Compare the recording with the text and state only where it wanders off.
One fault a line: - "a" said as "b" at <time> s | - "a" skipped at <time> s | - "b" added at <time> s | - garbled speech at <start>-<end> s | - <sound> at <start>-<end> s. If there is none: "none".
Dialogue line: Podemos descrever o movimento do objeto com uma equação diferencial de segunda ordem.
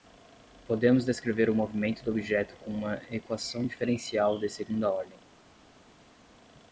none